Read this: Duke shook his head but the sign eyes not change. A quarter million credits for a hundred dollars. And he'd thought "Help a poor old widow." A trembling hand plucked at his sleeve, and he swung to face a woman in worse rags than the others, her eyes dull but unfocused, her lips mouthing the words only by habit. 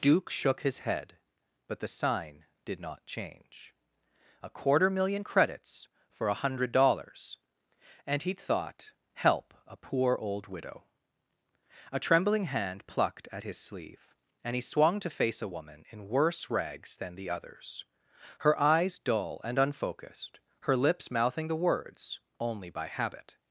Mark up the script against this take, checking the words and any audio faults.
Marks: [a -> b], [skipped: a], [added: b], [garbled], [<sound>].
Duke shook his head but the sign [eyes -> did] not change. A quarter million credits for a hundred dollars. And he'd thought "Help a poor old widow." A trembling hand plucked at his sleeve, and he swung to face a woman in worse rags than the others, her eyes dull [but -> and] unfocused, her lips mouthing the words only by habit.